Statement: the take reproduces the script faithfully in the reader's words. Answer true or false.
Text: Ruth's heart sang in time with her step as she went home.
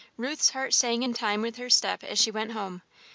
true